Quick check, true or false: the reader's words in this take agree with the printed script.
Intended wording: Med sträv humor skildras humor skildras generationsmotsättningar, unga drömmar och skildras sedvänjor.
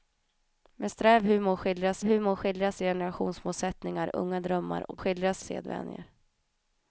true